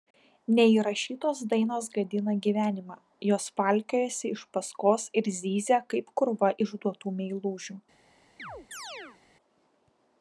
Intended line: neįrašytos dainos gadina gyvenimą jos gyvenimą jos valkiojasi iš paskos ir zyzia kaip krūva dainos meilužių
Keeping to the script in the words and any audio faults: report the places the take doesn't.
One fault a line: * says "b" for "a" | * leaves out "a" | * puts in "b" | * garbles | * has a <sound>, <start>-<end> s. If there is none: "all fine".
* leaves out "gyvenimą jos"
* says "išduotų" for "dainos"
* has a chirp, 8.4-9.2 s